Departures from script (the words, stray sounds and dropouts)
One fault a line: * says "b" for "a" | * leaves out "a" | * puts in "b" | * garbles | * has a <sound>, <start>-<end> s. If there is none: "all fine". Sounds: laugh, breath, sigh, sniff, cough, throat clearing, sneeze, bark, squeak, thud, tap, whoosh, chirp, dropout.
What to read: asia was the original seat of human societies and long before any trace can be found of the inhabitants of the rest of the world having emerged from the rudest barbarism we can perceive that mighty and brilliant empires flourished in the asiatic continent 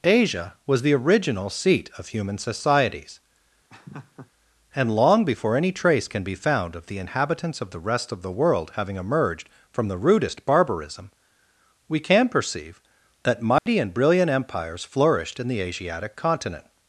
* has a laugh, 3.7-4.3 s
* has a dropout, 13.6-13.7 s